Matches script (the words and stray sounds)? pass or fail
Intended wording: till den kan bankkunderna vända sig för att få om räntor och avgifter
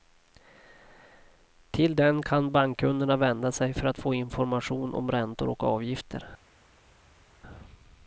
fail